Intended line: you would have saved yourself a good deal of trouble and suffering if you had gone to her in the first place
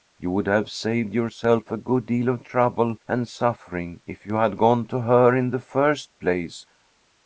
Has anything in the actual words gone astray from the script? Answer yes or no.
no